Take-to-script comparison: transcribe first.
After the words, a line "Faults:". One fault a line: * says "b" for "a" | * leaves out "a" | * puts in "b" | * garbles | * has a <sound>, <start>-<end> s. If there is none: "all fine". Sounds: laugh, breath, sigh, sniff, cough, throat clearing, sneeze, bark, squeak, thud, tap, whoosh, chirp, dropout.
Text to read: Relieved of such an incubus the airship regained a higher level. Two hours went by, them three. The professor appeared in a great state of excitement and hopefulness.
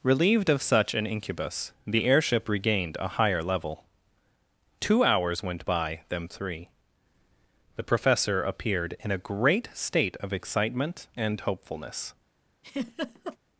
Relieved of such an incubus the airship regained a higher level. Two hours went by, them three. The professor appeared in a great state of excitement and hopefulness.
Faults:
* has a laugh, 12.6-13.4 s